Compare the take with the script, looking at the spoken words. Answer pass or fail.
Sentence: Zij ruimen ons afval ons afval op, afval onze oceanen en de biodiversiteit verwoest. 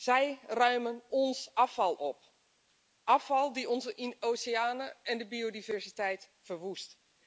fail